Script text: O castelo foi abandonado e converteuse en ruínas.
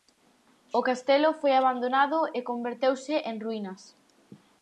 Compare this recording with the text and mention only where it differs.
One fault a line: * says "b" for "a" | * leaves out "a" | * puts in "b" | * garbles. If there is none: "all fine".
all fine